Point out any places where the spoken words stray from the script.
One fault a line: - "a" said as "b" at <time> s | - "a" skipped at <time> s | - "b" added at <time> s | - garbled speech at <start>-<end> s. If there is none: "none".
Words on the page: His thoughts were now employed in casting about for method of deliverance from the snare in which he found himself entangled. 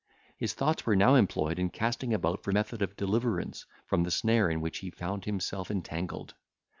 none